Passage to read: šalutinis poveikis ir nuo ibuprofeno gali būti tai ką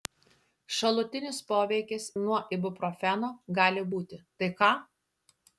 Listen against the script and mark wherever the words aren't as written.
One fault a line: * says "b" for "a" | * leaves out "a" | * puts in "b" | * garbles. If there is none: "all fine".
* leaves out "ir"